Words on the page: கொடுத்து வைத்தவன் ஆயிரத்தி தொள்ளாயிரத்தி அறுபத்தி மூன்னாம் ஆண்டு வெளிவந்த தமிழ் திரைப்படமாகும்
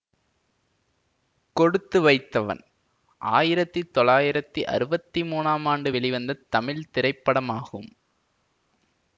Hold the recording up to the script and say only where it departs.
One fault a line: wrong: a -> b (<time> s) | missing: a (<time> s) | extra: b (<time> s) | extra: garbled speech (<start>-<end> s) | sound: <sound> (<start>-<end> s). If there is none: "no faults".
no faults